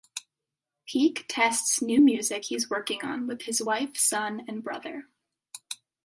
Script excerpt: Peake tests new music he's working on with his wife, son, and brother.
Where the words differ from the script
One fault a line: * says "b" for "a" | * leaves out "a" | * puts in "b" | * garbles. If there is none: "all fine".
all fine